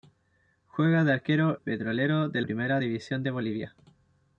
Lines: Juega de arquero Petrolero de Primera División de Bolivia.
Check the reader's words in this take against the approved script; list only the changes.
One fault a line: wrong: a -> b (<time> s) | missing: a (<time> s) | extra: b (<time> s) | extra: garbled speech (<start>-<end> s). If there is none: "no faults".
no faults